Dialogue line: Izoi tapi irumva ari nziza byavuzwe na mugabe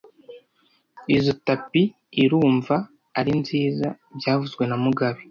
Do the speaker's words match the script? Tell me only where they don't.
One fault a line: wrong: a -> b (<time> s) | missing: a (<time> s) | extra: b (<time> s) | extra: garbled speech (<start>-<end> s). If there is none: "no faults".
no faults